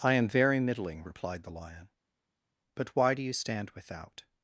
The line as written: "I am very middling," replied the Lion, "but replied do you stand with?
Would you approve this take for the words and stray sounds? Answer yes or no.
no